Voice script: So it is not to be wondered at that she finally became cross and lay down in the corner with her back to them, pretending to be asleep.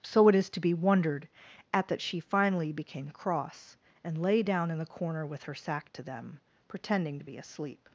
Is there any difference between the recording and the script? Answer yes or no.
yes